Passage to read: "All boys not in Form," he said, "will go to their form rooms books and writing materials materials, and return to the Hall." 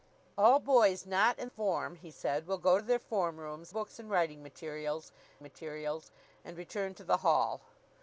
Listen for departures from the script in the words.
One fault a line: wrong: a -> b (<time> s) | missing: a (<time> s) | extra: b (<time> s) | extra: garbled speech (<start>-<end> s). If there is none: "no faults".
no faults